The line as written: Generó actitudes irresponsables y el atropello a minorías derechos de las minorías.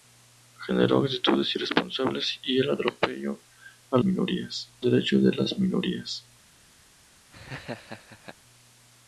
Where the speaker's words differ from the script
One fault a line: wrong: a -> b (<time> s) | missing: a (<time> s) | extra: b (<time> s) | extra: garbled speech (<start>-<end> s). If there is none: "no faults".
no faults